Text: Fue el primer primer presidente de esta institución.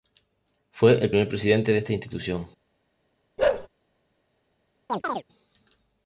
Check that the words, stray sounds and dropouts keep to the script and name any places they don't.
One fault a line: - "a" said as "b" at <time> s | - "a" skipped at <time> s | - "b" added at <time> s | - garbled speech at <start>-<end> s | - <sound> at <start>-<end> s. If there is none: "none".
- "primer" skipped at 1.3 s
- bark at 3.4-3.7 s
- chirp at 4.9-5.2 s